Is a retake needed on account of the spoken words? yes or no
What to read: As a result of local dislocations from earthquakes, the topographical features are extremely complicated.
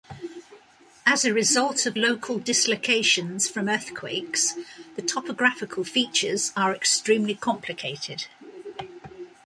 no